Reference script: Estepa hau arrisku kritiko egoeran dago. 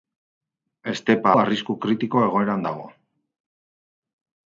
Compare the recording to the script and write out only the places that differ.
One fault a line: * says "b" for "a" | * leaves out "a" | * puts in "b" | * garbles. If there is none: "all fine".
* leaves out "hau"